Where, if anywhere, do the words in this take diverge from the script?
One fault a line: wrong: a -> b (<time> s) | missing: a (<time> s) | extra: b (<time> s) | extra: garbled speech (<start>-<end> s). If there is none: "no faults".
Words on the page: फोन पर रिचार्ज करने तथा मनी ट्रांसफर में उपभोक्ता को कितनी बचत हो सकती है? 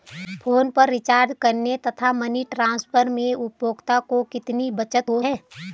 missing: सकती (5.2 s)